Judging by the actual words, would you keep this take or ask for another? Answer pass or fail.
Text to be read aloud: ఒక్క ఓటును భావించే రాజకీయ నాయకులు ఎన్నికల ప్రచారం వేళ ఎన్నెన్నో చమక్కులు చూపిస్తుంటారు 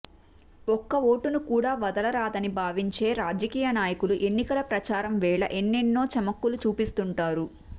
fail